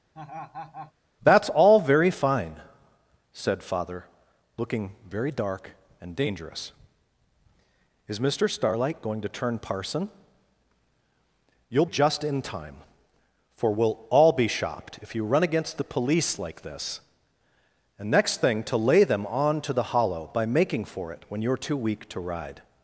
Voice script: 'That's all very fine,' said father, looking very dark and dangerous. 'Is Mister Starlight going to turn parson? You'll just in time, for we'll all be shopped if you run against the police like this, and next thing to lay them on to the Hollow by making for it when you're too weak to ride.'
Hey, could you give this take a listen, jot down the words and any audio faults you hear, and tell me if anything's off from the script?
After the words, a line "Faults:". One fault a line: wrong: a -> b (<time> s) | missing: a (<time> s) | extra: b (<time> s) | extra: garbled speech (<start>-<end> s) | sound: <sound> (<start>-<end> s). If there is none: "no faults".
'That's all very fine,' said father, looking very dark and dangerous. 'Is Mister Starlight going to turn parson? You'll just in time, for we'll all be shopped if you run against the police like this, and next thing to lay them on to the Hollow by making for it when you're too weak to ride.'
Faults:
sound: laugh (0.1-0.9 s)